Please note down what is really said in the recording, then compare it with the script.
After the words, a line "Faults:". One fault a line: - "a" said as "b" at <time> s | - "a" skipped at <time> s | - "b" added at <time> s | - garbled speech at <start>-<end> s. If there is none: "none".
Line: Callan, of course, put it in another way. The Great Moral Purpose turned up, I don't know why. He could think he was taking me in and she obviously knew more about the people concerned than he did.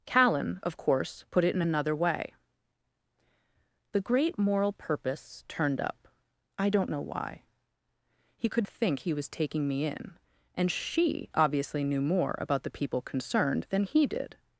Callan, of course, put it in another way. The Great Moral Purpose turned up, I don't know why. He could think he was taking me in and she obviously knew more about the people concerned than he did.
Faults:
none